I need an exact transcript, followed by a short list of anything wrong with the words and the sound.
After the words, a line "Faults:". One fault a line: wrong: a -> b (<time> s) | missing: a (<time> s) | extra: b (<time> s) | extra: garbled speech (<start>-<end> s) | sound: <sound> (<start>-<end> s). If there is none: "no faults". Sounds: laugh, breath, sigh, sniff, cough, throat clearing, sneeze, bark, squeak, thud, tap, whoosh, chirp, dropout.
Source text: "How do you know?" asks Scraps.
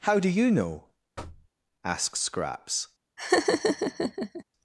"How do you know?" asks Scraps.
Faults:
sound: thud (1.2-1.5 s)
sound: laugh (3.2-4.4 s)